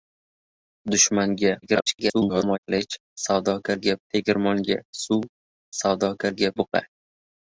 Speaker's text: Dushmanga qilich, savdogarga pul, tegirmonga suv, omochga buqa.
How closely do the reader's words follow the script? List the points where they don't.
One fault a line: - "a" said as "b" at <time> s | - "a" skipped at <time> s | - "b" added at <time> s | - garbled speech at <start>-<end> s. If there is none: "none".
- garbled speech at 1.6-2.6 s
- "pul" skipped at 4.0 s
- "omochga" said as "savdogarga" at 5.8 s